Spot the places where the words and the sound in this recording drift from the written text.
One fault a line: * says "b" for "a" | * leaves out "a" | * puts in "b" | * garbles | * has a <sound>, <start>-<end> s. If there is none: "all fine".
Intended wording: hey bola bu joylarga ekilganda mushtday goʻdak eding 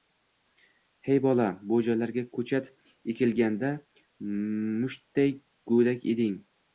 * puts in "koʻchat"